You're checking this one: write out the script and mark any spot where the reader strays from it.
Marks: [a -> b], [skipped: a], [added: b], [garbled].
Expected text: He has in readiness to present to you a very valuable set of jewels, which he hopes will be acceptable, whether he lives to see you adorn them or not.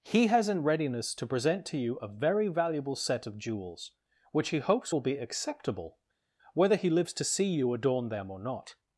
He has in readiness to present to you a very valuable set of jewels, which he hopes will be acceptable, whether he lives to see you adorn them or not.